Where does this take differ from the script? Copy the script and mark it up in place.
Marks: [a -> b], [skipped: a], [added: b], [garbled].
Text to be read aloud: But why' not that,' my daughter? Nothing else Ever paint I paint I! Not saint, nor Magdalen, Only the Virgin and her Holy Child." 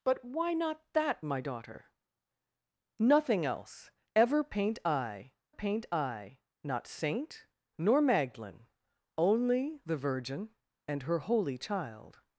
But why' not that,' my daughter? Nothing else Ever paint I paint I! Not saint, nor Magdalen, Only the Virgin and her Holy Child."